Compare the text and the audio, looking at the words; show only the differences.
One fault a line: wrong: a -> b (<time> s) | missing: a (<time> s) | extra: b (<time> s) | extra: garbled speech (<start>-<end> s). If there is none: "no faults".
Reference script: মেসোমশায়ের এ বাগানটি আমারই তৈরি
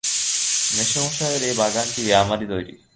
no faults